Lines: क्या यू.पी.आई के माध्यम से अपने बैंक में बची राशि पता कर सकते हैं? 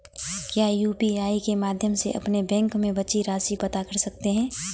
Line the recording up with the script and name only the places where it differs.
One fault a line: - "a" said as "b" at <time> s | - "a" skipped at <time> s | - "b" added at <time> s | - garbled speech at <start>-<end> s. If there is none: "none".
none